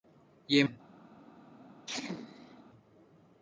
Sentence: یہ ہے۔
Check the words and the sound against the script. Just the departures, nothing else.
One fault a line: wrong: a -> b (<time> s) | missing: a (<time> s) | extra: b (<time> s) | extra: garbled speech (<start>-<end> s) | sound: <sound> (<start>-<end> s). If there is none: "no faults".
sound: sneeze (1.9-2.6 s)